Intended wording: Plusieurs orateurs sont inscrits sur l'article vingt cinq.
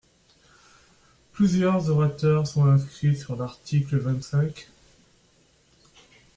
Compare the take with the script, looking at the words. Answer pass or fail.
pass